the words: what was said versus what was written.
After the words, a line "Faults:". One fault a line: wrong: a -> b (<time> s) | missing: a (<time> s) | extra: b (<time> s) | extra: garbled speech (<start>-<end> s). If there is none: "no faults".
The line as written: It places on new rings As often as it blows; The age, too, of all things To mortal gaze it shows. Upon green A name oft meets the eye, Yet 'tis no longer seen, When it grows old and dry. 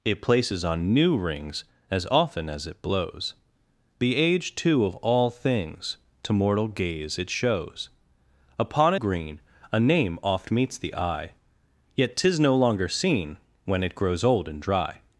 It places on new rings As often as it blows; The age, too, of all things To mortal gaze it shows. Upon green A name oft meets the eye, Yet 'tis no longer seen, When it grows old and dry.
Faults:
no faults